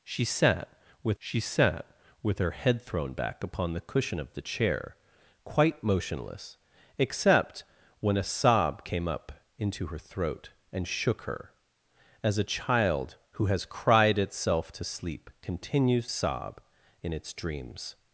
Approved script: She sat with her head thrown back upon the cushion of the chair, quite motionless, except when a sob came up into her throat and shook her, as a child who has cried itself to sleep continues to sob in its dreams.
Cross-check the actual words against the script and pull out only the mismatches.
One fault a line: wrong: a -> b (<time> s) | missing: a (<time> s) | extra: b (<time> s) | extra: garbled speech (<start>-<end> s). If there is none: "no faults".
extra: she sat with (1.2 s)
missing: to (16.1 s)